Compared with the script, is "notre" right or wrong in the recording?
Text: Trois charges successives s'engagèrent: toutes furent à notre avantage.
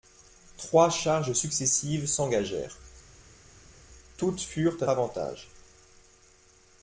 wrong